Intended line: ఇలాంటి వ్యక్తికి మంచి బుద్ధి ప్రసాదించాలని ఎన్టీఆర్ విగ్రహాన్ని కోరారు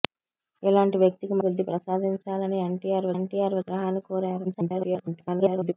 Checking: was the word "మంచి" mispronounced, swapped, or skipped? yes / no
yes